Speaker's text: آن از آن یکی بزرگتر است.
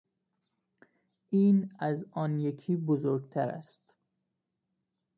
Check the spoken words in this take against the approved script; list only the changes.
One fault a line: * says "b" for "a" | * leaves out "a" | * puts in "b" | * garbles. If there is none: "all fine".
* says "این" for "آن"